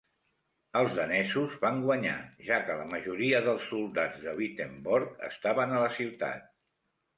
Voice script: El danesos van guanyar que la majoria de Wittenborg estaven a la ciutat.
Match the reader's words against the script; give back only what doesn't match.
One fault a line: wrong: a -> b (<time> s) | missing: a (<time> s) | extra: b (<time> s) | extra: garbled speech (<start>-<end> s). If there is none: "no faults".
wrong: El -> Els (0.8 s)
extra: ja (2.5 s)
extra: dels soldats (3.5 s)